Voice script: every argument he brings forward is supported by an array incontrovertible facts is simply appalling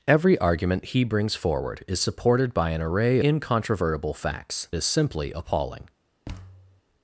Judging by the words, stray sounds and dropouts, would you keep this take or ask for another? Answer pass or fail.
fail